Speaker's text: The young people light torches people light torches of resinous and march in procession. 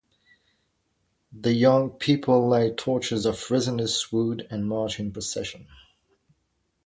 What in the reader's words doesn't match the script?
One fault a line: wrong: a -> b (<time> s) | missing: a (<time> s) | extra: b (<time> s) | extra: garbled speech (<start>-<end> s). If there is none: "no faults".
missing: people light torches (3.3 s)
extra: wood (4.1 s)